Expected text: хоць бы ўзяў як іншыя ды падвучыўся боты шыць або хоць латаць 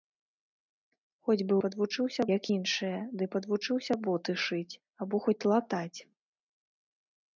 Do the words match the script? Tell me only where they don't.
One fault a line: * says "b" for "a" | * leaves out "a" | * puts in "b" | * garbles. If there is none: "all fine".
* says "падвучыўся" for "ўзяў"